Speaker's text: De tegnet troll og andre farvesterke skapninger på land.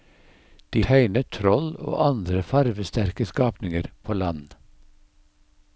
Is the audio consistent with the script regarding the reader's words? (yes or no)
yes